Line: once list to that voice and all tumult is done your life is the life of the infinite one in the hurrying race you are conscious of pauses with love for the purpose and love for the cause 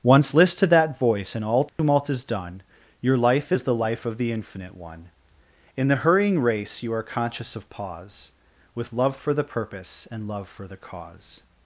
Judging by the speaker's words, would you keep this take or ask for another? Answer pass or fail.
fail